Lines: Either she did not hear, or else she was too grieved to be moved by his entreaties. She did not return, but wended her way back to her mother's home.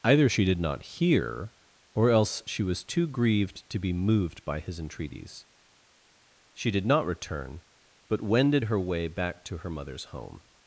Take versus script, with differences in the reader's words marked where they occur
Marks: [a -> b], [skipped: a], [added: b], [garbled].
Either she did not hear, or else she was too grieved to be moved by his entreaties. She did not return, but wended her way back to her mother's home.